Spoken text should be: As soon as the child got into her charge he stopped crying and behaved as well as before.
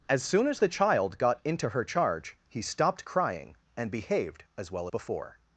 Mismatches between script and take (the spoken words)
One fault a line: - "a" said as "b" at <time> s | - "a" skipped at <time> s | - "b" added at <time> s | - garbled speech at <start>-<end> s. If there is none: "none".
- "as" skipped at 4.9 s